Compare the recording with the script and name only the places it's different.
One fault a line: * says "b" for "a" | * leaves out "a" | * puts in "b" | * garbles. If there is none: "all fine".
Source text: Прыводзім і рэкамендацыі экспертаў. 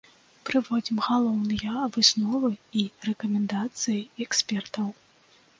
* puts in "галоўныя высновы"